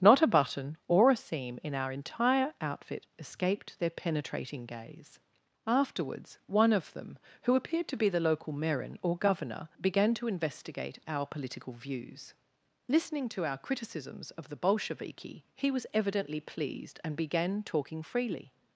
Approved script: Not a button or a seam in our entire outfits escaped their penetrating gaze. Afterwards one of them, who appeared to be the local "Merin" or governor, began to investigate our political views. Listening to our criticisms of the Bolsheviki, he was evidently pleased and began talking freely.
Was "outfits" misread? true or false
true